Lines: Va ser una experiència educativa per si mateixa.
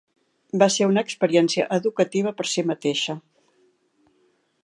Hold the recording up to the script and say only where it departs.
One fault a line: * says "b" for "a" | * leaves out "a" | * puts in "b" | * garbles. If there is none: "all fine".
all fine